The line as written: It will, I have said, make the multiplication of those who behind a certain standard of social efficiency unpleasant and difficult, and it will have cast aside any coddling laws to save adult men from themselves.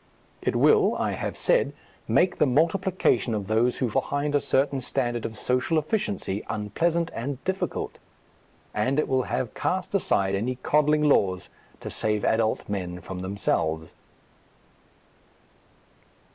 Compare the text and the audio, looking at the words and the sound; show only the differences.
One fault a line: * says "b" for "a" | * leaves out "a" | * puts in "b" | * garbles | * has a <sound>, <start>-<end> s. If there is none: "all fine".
all fine